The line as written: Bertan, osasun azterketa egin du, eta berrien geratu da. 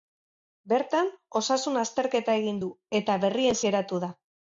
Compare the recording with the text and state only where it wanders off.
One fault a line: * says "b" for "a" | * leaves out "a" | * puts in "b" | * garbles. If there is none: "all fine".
all fine